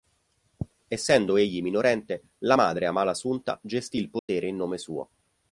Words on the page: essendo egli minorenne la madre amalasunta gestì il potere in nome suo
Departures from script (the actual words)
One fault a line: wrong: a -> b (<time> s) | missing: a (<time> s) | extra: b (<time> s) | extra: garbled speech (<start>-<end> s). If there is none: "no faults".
no faults